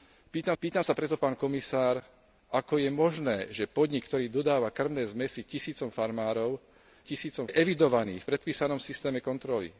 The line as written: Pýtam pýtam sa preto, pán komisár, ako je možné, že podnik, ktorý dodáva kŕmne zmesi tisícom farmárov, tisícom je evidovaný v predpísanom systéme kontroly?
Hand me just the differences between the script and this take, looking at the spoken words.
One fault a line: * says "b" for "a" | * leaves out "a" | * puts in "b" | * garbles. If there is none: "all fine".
all fine